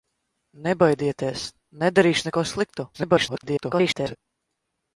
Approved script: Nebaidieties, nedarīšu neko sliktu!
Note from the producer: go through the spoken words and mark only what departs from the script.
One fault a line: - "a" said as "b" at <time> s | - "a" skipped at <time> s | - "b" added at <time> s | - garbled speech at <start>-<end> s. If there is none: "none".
- garbled speech at 2.9-4.2 s